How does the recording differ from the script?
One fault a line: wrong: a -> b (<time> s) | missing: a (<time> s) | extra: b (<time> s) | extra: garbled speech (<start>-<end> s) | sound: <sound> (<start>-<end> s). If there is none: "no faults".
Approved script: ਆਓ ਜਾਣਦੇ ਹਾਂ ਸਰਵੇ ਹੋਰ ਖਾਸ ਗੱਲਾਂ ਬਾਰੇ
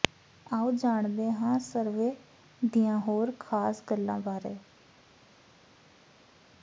extra: ਦੀਆਂ (2.6 s)